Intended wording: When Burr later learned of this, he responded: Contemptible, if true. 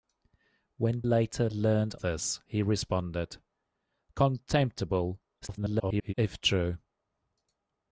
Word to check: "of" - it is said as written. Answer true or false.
false